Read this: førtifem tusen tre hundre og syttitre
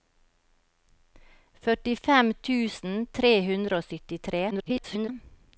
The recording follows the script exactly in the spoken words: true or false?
false